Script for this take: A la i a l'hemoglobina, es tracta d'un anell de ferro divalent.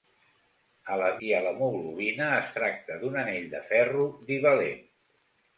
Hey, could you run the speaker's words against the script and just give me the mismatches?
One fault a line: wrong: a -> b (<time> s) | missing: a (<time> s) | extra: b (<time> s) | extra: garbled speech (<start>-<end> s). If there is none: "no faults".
no faults